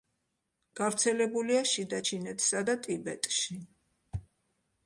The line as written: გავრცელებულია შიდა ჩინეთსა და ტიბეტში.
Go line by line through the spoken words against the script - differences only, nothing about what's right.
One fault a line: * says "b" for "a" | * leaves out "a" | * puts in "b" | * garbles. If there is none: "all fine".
all fine